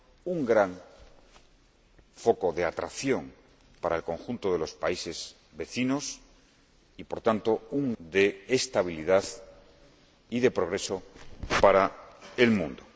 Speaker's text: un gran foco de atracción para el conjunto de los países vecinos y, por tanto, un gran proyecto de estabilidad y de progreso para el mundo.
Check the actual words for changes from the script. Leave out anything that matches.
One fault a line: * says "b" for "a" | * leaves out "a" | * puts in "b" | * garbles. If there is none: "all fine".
* leaves out "gran proyecto"